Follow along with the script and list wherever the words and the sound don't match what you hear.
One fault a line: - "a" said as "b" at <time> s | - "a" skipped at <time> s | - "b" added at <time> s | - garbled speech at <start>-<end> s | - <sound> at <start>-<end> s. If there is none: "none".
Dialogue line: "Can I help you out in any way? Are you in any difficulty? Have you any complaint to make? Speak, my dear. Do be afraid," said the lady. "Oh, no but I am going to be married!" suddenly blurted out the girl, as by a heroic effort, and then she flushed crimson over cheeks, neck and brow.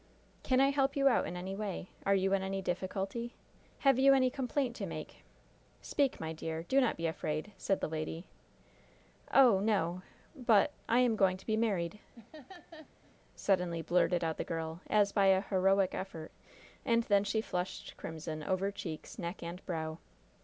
- "not" added at 6.8 s
- laugh at 12.1-13.2 s